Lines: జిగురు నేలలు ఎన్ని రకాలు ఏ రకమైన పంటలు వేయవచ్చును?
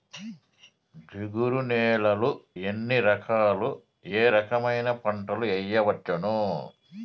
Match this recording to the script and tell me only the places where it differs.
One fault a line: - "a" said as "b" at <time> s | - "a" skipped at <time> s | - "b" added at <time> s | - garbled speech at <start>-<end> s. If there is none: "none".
none